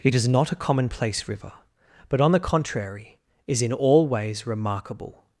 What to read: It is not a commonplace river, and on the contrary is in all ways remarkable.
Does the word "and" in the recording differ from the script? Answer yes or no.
yes